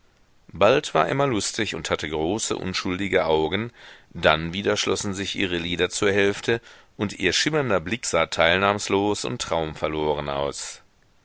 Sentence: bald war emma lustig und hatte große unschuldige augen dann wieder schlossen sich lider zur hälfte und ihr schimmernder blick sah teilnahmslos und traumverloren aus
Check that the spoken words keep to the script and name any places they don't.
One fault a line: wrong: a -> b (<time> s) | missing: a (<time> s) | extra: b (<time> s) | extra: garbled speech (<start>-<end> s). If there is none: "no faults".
extra: ihre (5.3 s)